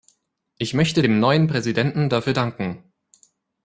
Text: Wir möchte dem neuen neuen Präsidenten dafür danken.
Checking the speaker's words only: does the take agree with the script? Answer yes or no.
no